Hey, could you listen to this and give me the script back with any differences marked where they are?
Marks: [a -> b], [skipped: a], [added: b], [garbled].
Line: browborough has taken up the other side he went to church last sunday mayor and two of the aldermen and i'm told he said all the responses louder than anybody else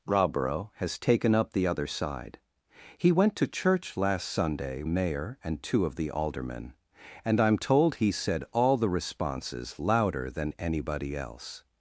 browborough has taken up the other side he went to church last sunday mayor and two of the aldermen and i'm told he said all the responses louder than anybody else